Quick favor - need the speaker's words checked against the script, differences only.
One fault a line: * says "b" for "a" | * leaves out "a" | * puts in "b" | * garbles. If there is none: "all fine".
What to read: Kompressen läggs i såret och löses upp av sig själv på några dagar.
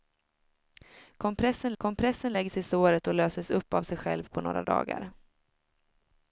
* puts in "kompressen"